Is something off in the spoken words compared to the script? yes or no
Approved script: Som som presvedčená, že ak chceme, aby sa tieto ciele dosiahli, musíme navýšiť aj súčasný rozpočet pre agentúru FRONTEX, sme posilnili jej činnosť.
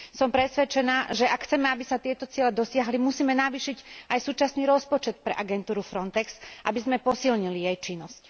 yes